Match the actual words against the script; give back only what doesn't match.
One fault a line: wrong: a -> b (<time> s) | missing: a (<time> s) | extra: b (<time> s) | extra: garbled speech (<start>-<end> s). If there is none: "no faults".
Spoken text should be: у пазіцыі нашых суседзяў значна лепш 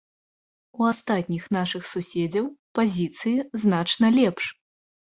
wrong: пазіцыі -> астатніх (0.9 s)
extra: пазіцыі (2.8 s)